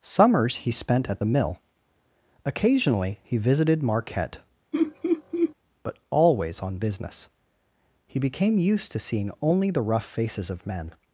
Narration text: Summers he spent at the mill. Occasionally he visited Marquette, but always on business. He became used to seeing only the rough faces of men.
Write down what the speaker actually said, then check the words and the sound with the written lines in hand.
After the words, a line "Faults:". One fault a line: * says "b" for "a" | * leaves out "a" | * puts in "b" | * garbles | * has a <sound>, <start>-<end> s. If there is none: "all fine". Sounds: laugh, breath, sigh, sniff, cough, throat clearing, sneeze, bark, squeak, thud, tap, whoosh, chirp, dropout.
Summers he spent at the mill. Occasionally he visited Marquette, but always on business. He became used to seeing only the rough faces of men.
Faults:
* has a laugh, 4.7-5.5 s